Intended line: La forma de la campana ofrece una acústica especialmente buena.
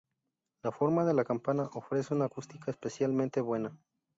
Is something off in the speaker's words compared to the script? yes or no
no